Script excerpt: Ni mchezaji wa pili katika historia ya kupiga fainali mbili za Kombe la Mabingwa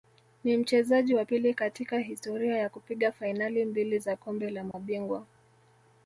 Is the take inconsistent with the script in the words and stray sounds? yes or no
yes